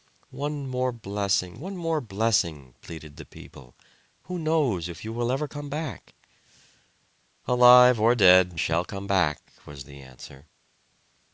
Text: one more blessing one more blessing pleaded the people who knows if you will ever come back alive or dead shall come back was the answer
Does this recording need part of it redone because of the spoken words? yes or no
no